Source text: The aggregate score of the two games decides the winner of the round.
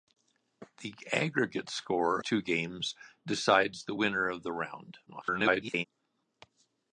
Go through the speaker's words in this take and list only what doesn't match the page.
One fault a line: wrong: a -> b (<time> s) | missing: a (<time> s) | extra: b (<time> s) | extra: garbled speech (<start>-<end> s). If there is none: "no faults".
missing: of the (2.2 s)
extra: garbled speech (5.1-5.8 s)